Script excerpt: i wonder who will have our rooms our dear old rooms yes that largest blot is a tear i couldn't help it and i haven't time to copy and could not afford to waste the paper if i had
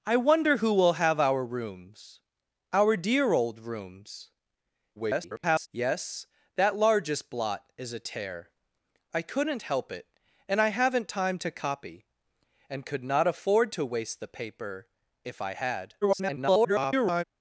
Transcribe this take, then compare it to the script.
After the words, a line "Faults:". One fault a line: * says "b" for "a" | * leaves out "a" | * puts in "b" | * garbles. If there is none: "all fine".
i wonder who will have our rooms our dear old rooms [garbled] yes that largest blot is a tear i couldn't help it and i haven't time to copy and could not afford to waste the paper if i had [garbled]
Faults:
* garbles
* garbles